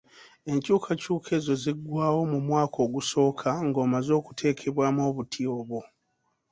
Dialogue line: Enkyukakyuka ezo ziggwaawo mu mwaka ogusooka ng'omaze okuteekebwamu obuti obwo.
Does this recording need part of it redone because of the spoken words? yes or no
no